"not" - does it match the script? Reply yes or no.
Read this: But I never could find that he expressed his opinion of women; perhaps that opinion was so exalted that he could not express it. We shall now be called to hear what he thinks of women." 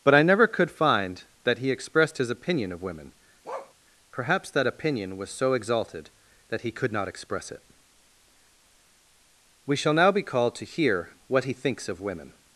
yes